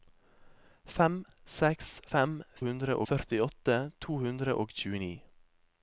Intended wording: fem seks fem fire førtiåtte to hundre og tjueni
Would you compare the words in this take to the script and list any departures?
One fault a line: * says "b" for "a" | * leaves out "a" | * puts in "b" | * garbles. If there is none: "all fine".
* says "hundre" for "fire"